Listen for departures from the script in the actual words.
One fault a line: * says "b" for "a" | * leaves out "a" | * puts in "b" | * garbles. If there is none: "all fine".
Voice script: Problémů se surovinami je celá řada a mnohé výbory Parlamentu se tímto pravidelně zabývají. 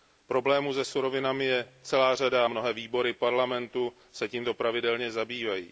all fine